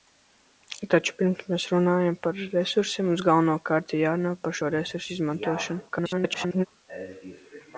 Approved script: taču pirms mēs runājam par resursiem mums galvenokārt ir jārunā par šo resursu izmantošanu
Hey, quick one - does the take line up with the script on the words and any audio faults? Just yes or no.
no